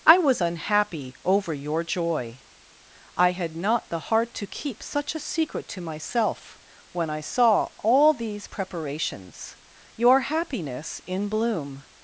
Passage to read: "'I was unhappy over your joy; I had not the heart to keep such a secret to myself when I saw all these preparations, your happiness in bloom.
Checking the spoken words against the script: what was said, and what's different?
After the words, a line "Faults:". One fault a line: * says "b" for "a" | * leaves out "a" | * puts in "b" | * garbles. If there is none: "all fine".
"'I was unhappy over your joy; I had not the heart to keep such a secret to myself when I saw all these preparations, your happiness in bloom.
Faults:
all fine